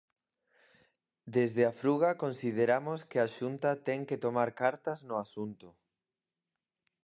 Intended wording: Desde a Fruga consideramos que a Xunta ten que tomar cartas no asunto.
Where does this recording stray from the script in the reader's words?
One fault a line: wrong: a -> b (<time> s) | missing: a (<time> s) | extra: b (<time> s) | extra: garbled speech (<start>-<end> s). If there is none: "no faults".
no faults